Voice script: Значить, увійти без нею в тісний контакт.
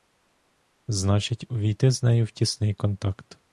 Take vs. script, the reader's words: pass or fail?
fail